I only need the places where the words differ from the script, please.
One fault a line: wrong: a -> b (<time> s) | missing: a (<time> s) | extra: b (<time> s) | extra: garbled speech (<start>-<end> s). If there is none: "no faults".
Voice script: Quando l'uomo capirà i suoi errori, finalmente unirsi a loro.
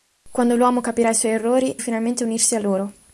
no faults